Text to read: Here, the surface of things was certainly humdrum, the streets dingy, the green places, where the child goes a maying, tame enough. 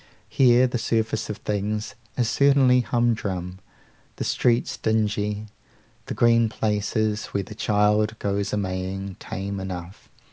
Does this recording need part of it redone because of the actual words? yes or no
yes